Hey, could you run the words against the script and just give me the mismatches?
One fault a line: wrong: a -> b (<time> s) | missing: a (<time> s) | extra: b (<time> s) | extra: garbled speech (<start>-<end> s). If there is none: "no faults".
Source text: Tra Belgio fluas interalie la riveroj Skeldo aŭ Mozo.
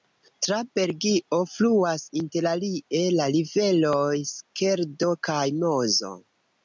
wrong: aŭ -> kaj (5.3 s)